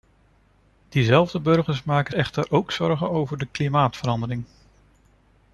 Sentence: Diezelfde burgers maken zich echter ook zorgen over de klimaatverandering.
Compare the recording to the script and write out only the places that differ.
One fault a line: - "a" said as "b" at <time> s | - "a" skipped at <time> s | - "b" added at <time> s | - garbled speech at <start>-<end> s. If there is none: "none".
- "zich" skipped at 2.1 s